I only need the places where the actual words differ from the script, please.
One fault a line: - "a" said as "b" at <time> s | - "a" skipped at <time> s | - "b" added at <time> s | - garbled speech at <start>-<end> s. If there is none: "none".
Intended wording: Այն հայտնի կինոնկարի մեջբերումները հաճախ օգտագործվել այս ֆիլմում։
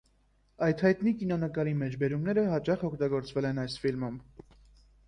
- "Այն" said as "Այդ" at 0.7 s
- "են" added at 3.5 s